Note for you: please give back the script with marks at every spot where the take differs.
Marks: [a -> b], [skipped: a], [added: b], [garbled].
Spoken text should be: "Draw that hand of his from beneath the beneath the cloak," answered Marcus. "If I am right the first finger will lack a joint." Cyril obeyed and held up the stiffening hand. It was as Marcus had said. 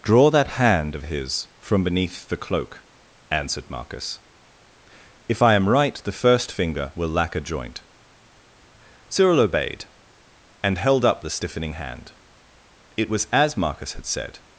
"Draw that hand of his from beneath the [skipped: beneath the] cloak," answered Marcus. "If I am right the first finger will lack a joint." Cyril obeyed and held up the stiffening hand. It was as Marcus had said.